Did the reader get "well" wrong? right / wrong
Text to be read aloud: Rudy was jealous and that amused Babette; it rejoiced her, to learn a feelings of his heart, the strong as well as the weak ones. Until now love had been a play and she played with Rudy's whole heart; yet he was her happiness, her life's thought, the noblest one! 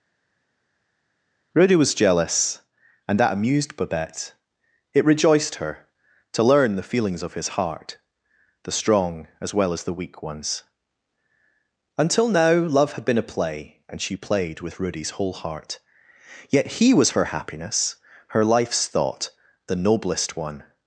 right